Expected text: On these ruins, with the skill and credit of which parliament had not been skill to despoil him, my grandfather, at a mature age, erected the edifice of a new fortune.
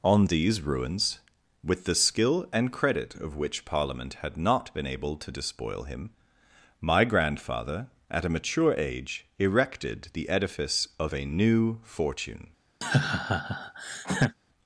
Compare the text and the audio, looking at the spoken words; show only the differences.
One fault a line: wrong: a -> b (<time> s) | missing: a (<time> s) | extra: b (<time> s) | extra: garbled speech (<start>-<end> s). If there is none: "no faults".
wrong: skill -> able (4.9 s)